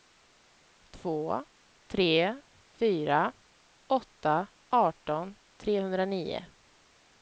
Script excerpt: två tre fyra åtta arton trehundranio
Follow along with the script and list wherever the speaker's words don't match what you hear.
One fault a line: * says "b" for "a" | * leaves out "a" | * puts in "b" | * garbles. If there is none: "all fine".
all fine